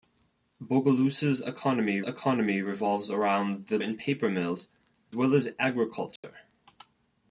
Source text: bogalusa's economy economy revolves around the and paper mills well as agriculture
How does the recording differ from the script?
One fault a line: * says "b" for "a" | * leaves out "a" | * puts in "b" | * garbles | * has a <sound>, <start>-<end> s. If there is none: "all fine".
* has a dropout, 6.2-6.2 s